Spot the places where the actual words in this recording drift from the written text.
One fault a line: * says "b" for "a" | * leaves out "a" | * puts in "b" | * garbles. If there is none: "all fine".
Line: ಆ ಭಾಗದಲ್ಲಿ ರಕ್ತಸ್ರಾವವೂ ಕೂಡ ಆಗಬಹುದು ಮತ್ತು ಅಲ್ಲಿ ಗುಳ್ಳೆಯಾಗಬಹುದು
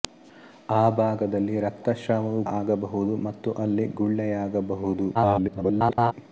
* leaves out "ಕೂಡ"
* garbles